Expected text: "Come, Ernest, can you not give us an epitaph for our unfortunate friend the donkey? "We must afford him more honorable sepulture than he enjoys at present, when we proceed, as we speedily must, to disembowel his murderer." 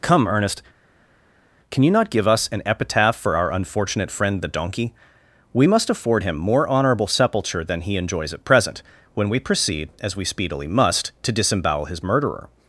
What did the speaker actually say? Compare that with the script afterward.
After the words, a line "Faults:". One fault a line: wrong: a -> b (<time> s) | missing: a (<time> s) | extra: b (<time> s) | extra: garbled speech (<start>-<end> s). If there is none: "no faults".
"Come, Ernest, can you not give us an epitaph for our unfortunate friend the donkey? "We must afford him more honorable sepulture than he enjoys at present, when we proceed, as we speedily must, to disembowel his murderer."
Faults:
no faults